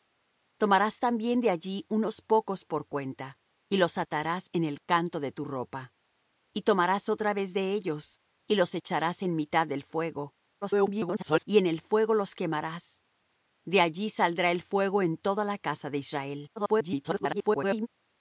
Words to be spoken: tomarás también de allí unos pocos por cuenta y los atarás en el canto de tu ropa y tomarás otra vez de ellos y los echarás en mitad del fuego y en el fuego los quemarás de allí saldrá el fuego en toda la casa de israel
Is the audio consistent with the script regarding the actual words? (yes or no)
no